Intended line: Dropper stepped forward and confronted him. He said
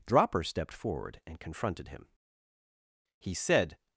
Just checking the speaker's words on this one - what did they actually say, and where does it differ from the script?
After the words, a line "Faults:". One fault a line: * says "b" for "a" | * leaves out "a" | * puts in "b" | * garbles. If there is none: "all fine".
Dropper stepped forward and confronted him. He said
Faults:
all fine